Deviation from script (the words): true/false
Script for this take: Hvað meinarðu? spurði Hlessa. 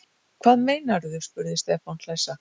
true